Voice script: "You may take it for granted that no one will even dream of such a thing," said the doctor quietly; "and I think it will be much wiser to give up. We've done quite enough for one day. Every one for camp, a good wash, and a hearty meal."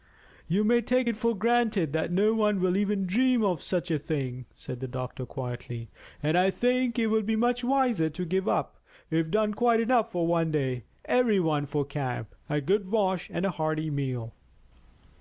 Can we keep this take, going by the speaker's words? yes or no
yes